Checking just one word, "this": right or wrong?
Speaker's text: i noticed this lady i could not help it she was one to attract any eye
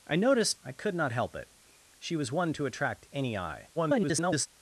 wrong